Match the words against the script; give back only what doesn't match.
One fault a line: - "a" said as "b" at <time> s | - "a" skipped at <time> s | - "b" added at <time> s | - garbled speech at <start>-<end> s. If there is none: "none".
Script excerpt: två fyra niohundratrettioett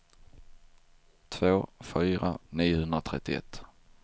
none